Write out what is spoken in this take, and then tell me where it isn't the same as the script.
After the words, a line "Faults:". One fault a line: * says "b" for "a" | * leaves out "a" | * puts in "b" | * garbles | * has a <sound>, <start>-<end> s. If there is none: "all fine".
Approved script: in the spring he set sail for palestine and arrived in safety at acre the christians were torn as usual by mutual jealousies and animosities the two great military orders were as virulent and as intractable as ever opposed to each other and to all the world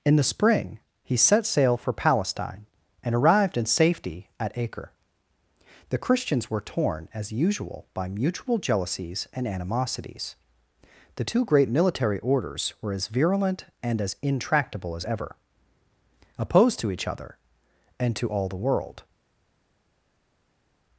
in the spring he set sail for palestine and arrived in safety at acre the christians were torn as usual by mutual jealousies and animosities the two great military orders were as virulent and as intractable as ever opposed to each other and to all the world
Faults:
all fine